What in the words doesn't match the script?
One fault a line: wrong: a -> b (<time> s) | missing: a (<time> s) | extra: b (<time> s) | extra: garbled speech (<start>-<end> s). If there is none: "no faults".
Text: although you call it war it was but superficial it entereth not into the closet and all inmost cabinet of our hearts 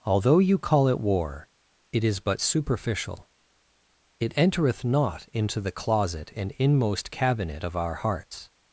wrong: was -> is (2.0 s)
missing: all (6.5 s)